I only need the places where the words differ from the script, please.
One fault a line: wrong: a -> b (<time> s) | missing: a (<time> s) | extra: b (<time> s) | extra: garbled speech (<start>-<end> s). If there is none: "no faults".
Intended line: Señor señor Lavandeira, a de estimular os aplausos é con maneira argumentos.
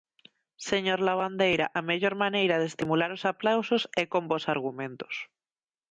missing: señor (1.0 s)
extra: mellor maneira (1.9 s)
wrong: maneira -> bos (4.3 s)